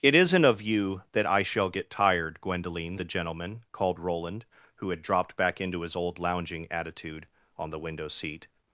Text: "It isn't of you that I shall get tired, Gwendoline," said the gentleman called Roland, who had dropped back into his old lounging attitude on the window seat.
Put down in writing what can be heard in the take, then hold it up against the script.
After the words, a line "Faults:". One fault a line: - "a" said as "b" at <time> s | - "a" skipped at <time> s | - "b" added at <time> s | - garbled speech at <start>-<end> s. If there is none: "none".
"It isn't of you that I shall get tired, Gwendoline," the gentleman called Roland, who had dropped back into his old lounging attitude on the window seat.
Faults:
- "said" skipped at 3.0 s